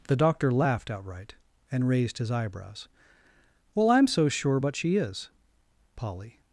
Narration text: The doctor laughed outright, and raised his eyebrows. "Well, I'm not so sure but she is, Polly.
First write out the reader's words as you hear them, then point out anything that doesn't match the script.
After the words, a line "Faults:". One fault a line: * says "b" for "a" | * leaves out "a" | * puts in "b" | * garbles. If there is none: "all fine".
The doctor laughed outright, and raised his eyebrows. "Well, I'm so sure but she is, Polly.
Faults:
* leaves out "not"